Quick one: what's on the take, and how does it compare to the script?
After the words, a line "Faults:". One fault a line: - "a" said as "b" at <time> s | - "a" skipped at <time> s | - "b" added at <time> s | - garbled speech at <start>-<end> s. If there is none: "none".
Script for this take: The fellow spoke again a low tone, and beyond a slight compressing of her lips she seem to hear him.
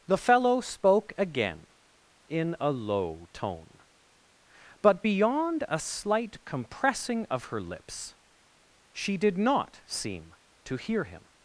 The fellow spoke again in a low tone, but beyond a slight compressing of her lips she did not seem to hear him.
Faults:
- "in" added at 2.3 s
- "and" said as "but" at 4.8 s
- "did not" added at 9.2 s